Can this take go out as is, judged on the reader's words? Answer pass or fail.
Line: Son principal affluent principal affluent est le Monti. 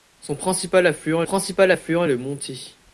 pass